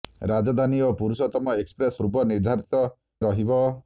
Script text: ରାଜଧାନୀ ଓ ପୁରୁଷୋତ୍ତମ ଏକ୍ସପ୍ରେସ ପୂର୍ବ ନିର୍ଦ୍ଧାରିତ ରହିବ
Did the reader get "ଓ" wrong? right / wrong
right